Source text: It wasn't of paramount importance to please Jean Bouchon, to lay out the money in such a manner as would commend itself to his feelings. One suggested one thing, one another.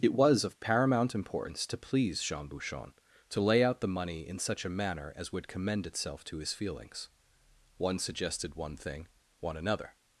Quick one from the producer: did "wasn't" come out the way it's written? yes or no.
no